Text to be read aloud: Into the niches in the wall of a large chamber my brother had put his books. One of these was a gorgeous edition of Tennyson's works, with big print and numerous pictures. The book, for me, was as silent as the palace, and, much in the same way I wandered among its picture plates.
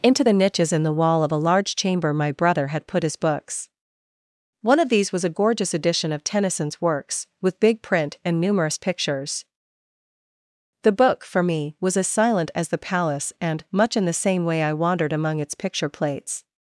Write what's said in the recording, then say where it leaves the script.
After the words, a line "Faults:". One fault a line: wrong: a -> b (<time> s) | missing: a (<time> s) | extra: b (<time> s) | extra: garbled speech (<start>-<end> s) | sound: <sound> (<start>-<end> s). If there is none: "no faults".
Into the niches in the wall of a large chamber my brother had put his books. One of these was a gorgeous edition of Tennyson's works, with big print and numerous pictures. The book, for me, was as silent as the palace, and, much in the same way I wandered among its picture plates.
Faults:
no faults